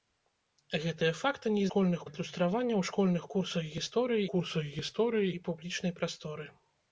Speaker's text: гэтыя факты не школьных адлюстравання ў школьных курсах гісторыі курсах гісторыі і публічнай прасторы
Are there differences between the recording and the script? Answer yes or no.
no